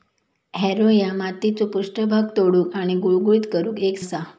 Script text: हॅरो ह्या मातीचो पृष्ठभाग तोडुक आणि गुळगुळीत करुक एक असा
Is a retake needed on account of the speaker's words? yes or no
no